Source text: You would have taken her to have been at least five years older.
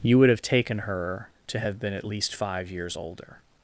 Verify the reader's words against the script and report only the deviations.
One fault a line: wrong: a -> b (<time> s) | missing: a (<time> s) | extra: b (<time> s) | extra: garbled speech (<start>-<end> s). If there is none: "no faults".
no faults